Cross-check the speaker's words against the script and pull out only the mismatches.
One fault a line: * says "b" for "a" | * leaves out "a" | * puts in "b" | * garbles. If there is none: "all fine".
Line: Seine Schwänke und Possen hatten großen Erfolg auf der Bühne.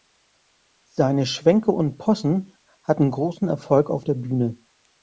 all fine